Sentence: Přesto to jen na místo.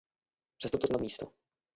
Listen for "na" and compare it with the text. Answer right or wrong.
right